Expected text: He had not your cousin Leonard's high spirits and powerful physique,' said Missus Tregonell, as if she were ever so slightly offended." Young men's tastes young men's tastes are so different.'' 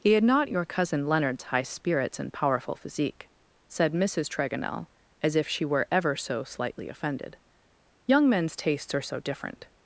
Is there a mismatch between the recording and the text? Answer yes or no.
yes